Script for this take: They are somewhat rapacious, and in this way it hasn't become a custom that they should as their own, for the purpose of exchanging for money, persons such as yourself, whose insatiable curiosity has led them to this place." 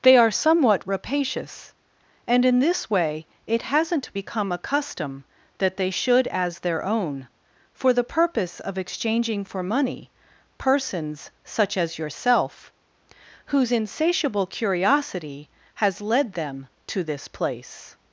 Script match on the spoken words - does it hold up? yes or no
yes